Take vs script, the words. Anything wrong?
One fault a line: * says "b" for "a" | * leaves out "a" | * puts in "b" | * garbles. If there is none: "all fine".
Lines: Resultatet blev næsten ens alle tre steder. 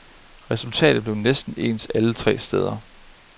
all fine